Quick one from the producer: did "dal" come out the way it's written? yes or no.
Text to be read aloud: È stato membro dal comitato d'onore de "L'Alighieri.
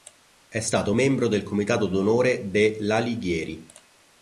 no